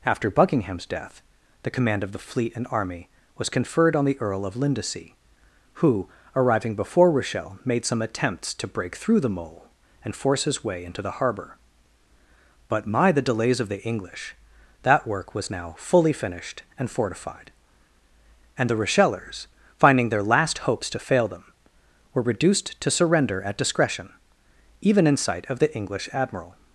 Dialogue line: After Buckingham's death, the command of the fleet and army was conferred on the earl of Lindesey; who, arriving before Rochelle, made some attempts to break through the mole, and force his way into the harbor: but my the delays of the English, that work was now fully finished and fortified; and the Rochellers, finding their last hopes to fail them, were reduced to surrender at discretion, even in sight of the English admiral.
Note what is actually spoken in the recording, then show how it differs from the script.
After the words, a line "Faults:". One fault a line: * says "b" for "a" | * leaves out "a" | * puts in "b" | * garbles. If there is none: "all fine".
After Buckingham's death, the command of the fleet and army was conferred on the earl of Lindesey; who, arriving before Rochelle, made some attempts to break through the mole, and force his way into the harbor: but my the delays of the English, that work was now fully finished and fortified; and the Rochellers, finding their last hopes to fail them, were reduced to surrender at discretion, even in sight of the English admiral.
Faults:
all fine